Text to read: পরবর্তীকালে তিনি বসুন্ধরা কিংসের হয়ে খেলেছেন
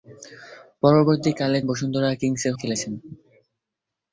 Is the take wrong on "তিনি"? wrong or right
wrong